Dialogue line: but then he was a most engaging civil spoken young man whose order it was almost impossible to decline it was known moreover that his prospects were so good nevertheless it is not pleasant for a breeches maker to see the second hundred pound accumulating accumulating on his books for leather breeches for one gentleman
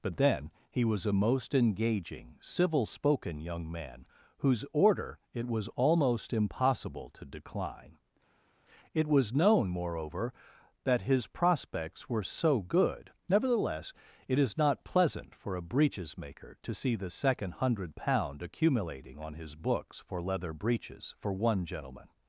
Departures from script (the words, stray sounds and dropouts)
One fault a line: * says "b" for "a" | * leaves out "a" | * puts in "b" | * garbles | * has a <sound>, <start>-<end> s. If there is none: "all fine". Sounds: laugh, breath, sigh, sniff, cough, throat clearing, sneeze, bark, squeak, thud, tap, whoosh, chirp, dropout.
* leaves out "accumulating"